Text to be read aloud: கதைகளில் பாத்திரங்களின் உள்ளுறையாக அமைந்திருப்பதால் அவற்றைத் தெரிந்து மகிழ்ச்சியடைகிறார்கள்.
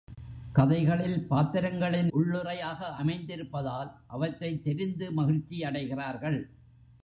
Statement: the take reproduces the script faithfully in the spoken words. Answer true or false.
true